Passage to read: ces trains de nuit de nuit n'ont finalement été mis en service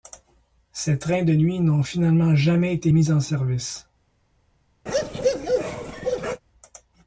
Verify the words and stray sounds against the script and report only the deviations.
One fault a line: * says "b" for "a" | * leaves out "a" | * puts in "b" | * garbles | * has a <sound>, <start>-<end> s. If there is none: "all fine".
* leaves out "de nuit"
* puts in "jamais"
* has a bark, 4.9-6.4 s